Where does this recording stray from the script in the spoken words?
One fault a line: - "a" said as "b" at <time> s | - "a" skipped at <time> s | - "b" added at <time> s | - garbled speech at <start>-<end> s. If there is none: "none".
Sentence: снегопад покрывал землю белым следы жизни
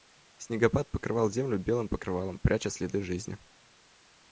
- "покрывалом пряча" added at 1.9 s